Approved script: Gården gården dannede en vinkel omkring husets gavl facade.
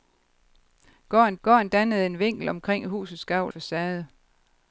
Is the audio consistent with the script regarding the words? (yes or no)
yes